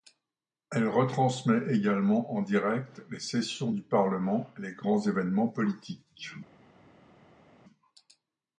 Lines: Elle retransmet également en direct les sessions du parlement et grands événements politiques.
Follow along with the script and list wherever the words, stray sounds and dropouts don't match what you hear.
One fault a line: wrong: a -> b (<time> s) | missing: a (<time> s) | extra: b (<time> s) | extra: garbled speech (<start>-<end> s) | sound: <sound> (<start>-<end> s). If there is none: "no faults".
extra: les (4.6 s)